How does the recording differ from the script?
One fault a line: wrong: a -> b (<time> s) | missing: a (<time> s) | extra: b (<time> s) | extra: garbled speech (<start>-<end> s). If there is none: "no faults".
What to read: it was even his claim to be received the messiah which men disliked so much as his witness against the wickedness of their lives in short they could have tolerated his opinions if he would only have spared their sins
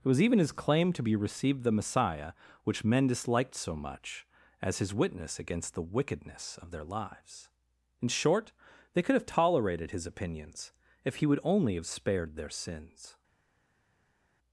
no faults